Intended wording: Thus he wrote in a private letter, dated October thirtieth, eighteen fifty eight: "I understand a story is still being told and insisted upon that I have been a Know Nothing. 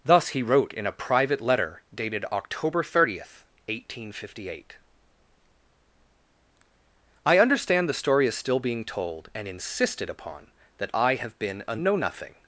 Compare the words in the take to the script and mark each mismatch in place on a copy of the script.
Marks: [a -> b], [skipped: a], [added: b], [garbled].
Thus he wrote in a private letter, dated October thirtieth, eighteen fifty eight: "I understand [a -> the] story is still being told and insisted upon that I have been a Know Nothing.